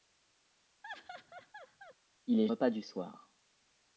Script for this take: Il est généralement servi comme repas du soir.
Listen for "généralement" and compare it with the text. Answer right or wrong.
wrong